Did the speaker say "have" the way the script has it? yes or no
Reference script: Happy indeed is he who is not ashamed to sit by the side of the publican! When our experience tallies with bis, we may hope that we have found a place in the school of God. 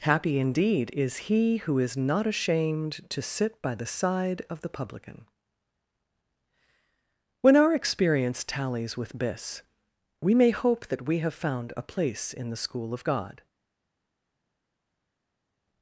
yes